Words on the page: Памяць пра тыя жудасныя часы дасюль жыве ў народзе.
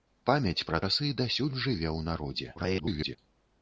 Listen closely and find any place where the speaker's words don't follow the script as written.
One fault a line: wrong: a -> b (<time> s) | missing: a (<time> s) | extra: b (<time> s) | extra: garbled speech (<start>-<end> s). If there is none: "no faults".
missing: тыя жудасныя (0.8 s)
extra: garbled speech (2.5-3.2 s)